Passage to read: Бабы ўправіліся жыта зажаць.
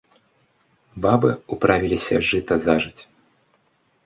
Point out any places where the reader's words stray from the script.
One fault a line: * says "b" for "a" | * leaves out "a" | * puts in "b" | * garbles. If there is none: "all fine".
all fine